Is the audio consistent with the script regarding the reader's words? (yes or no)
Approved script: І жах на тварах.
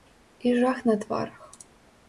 yes